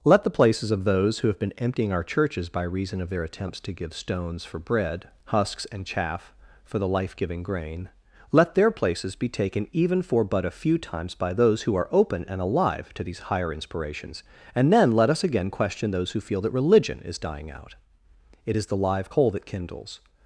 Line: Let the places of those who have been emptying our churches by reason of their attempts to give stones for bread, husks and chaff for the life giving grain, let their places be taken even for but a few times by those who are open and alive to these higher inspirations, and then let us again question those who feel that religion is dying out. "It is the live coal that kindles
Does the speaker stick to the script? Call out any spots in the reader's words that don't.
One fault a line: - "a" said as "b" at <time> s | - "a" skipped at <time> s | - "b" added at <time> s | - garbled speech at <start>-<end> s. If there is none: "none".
none